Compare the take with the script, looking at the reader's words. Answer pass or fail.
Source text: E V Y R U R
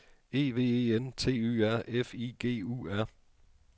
fail